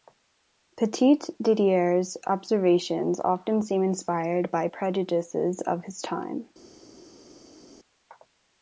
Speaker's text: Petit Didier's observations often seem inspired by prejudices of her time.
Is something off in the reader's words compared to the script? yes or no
yes